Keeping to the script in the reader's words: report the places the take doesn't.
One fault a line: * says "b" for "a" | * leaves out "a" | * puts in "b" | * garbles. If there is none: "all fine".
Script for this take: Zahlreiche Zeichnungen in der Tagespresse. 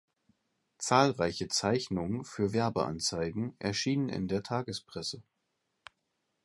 * puts in "für Werbeanzeigen erschienen"